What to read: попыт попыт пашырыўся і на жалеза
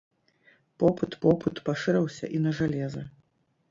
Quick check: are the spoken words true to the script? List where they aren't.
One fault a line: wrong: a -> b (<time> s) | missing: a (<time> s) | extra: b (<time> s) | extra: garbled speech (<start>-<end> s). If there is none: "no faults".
no faults